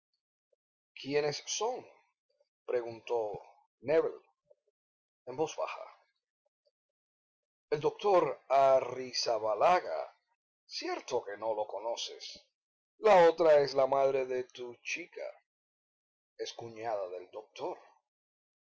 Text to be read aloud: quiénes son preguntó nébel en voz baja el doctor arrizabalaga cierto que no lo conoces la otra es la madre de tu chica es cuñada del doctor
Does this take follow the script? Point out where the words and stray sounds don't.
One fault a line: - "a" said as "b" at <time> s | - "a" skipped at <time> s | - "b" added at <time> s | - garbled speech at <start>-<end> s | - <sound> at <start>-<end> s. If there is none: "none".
none